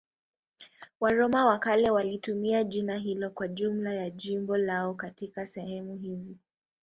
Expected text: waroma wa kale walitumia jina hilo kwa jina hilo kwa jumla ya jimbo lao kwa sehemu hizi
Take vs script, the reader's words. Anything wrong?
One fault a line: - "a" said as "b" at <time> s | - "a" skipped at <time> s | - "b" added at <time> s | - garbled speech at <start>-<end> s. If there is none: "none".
- "jina hilo kwa" skipped at 3.5 s
- "kwa" said as "katika" at 4.9 s